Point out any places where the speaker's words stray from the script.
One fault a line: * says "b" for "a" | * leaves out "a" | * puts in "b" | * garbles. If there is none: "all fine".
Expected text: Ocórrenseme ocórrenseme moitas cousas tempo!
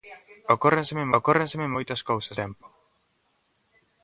all fine